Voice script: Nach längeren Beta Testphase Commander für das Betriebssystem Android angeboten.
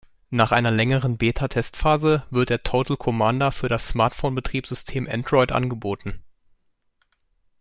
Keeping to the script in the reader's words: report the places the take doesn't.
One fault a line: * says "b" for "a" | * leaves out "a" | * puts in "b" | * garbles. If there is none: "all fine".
* puts in "einer"
* puts in "wird der Total"
* puts in "Smartphone"